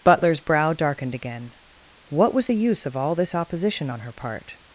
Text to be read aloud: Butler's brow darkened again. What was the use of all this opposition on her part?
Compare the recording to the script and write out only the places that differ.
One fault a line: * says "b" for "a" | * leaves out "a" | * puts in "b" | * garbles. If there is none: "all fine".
all fine